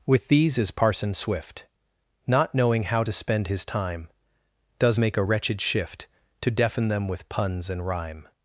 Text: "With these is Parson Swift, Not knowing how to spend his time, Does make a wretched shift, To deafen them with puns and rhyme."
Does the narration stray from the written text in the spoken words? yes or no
no